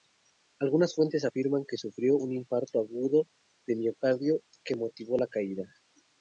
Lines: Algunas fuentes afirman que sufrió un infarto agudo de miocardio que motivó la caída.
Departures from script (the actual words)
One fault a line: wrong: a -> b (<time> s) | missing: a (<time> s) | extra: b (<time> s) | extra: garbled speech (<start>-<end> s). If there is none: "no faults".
no faults